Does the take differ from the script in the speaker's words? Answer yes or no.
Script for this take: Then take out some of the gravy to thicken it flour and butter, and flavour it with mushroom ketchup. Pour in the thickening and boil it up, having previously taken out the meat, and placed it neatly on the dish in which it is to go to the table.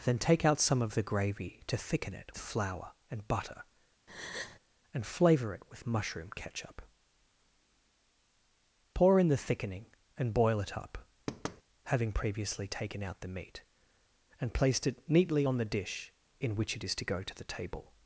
no